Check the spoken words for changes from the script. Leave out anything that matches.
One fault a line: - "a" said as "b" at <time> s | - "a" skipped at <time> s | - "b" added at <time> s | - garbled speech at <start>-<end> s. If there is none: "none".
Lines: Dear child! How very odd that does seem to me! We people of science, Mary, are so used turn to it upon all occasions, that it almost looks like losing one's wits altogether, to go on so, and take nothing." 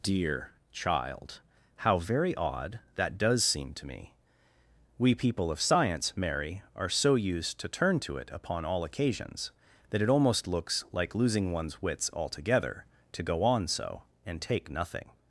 - "to" added at 7.6 s